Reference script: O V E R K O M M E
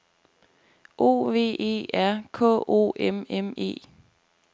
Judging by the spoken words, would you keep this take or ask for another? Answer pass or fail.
pass